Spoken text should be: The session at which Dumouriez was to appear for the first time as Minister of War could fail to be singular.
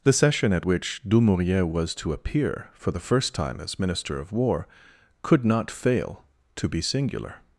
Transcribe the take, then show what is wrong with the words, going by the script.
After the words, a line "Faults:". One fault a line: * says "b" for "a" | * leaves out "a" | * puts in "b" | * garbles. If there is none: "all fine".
The session at which Dumouriez was to appear for the first time as Minister of War could not fail to be singular.
Faults:
* puts in "not"